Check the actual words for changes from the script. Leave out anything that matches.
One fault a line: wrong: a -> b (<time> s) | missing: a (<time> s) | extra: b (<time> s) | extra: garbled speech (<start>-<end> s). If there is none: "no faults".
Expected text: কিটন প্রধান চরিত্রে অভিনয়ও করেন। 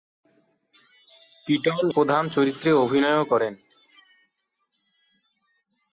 no faults